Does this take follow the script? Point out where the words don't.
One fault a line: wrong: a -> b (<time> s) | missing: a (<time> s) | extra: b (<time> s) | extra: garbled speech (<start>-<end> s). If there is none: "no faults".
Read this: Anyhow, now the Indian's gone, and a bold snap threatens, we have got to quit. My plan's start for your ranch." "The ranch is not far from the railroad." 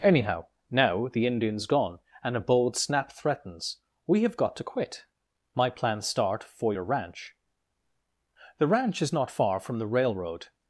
no faults